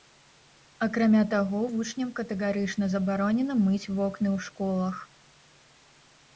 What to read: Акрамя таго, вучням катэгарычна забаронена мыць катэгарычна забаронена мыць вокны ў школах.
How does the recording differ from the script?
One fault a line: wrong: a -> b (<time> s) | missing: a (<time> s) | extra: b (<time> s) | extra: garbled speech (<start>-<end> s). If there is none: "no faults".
missing: катэгарычна забаронена мыць (3.9 s)